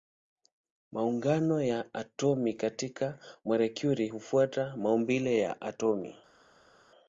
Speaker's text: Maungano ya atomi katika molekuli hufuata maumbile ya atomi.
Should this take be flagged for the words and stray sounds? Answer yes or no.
no